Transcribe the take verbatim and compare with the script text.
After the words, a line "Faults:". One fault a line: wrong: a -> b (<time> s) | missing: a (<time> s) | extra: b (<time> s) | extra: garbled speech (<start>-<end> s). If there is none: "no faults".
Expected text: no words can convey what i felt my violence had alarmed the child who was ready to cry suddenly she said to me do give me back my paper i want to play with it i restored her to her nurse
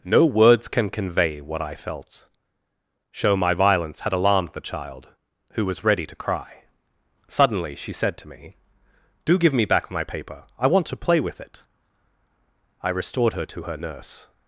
no words can convey what i felt show my violence had alarmed the child who was ready to cry suddenly she said to me do give me back my paper i want to play with it i restored her to her nurse
Faults:
extra: show (3.1 s)